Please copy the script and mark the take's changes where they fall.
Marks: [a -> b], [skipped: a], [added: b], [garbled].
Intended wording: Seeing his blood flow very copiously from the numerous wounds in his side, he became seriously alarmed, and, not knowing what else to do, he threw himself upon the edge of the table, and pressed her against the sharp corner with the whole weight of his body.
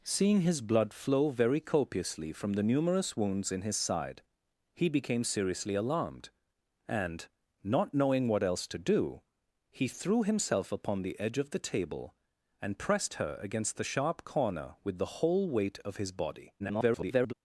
Seeing his blood flow very copiously from the numerous wounds in his side, he became seriously alarmed, and, not knowing what else to do, he threw himself upon the edge of the table, and pressed her against the sharp corner with the whole weight of his body. [garbled]